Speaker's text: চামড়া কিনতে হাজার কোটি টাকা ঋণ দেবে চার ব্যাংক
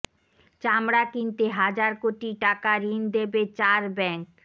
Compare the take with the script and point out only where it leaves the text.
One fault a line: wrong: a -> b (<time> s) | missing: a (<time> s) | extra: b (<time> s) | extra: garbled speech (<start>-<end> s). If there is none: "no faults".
no faults